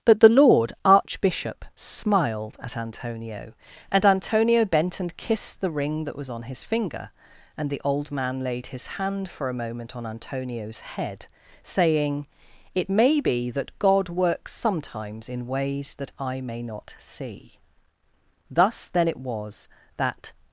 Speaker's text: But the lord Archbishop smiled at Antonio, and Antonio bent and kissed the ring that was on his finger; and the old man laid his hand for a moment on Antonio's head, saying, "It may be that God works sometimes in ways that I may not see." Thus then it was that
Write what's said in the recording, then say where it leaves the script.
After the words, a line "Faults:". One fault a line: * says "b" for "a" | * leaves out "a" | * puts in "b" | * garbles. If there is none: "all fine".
But the lord Archbishop smiled at Antonio, and Antonio bent and kissed the ring that was on his finger; and the old man laid his hand for a moment on Antonio's head, saying, "It may be that God works sometimes in ways that I may not see." Thus then it was that
Faults:
all fine